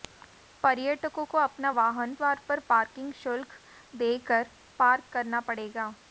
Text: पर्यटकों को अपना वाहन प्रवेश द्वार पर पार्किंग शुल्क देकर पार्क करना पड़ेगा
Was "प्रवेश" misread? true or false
true